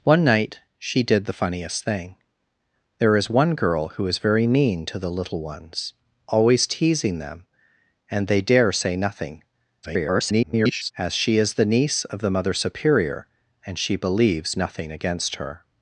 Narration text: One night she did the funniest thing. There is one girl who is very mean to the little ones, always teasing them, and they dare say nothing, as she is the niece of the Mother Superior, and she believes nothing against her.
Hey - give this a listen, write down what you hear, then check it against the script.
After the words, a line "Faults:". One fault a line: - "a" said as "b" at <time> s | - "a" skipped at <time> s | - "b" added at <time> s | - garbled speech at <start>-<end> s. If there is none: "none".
One night she did the funniest thing. There is one girl who is very mean to the little ones, always teasing them, and they dare say nothing, [garbled] as she is the niece of the Mother Superior, and she believes nothing against her.
Faults:
- garbled speech at 9.8-10.9 s